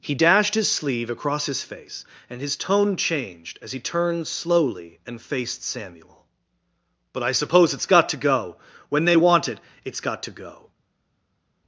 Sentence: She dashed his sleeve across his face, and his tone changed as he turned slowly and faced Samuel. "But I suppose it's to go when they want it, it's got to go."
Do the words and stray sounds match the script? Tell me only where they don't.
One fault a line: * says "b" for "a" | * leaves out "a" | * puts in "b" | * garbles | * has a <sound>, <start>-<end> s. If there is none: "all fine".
* says "He" for "She"
* puts in "got"